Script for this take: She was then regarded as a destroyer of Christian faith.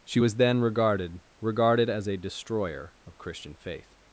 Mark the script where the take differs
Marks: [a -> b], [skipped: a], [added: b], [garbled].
She was then regarded [added: regarded] as a destroyer of Christian faith.